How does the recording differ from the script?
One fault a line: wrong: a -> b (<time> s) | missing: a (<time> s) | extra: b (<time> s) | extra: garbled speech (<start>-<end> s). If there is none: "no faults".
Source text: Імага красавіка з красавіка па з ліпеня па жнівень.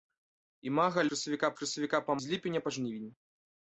no faults